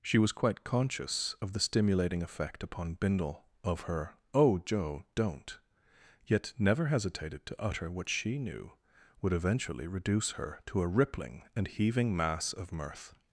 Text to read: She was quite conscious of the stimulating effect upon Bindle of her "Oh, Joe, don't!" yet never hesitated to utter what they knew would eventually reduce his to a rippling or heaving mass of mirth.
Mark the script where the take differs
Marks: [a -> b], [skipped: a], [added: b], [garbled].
She was quite conscious of the stimulating effect upon Bindle of her "Oh, Joe, don't!" yet never hesitated to utter what [they -> she] knew would eventually reduce [his -> her] to a rippling [or -> and] heaving mass of mirth.